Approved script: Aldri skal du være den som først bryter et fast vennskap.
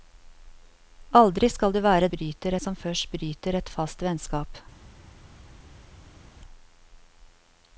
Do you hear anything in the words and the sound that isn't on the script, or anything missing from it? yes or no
yes